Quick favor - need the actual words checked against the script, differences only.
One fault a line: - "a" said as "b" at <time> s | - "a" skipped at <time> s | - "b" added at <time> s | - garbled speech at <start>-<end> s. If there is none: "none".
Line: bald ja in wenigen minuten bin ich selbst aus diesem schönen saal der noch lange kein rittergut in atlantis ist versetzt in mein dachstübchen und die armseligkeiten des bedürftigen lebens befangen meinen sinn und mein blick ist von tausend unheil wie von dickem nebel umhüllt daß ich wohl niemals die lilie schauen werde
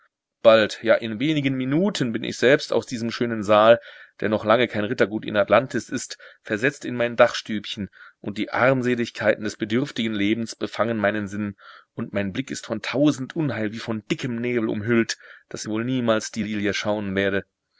- "ich" skipped at 15.7 s